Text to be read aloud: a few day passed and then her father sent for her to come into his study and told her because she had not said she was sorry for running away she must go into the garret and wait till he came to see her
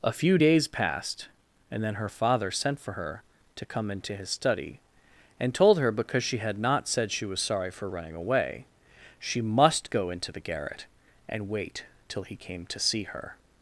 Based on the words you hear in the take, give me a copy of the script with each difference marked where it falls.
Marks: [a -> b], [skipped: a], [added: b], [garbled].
a few [day -> days] passed and then her father sent for her to come into his study and told her because she had not said she was sorry for running away she must go into the garret and wait till he came to see her